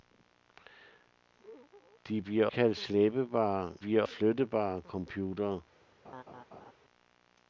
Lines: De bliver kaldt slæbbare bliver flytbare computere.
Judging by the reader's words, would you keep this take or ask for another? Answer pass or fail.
pass